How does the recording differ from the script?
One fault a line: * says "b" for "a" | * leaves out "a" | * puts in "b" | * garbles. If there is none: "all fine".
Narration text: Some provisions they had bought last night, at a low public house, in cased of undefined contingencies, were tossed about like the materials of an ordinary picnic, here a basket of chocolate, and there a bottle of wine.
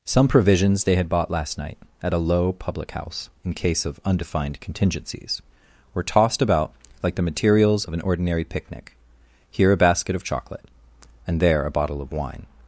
* says "case" for "cased"